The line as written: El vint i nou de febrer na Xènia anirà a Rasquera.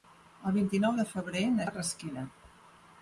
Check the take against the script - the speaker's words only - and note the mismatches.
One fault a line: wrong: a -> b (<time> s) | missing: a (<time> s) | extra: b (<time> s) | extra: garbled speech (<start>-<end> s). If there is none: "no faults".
missing: Xènia anirà (1.7 s)